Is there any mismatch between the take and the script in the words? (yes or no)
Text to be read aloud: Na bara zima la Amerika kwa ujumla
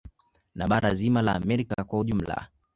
no